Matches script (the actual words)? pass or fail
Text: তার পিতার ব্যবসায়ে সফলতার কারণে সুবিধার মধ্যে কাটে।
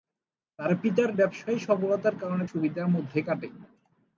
pass